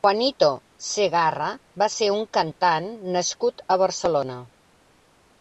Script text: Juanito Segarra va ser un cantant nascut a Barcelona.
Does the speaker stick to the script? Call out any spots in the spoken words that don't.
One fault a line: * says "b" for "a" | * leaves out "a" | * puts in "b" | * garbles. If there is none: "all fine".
all fine